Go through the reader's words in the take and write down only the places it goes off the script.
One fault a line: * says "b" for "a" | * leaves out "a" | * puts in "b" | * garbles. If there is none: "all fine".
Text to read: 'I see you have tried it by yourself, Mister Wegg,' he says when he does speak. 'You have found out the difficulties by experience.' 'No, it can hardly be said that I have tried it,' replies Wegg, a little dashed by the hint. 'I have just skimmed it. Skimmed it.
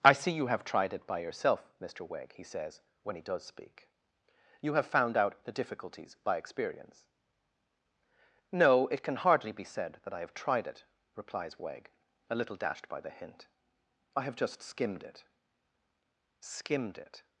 all fine